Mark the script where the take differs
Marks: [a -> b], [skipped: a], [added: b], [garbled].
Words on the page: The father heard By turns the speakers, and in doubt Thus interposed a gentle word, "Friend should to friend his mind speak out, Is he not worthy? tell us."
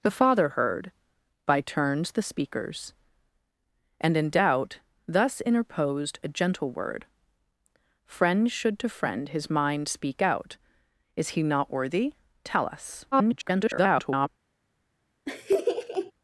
The father heard By turns the speakers, and in doubt Thus interposed a gentle word, "Friend should to friend his mind speak out, Is he not worthy? tell us." [garbled]